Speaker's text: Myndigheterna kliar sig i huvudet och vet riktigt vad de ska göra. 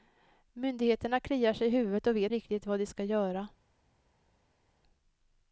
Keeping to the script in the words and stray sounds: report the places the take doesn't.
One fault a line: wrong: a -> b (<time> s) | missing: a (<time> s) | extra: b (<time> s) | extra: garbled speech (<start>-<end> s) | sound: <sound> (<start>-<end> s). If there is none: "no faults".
no faults